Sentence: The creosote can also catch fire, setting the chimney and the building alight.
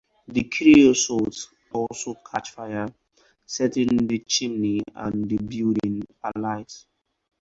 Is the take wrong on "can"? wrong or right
wrong